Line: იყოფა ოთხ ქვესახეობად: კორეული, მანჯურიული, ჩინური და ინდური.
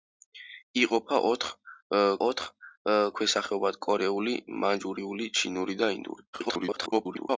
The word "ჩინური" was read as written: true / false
true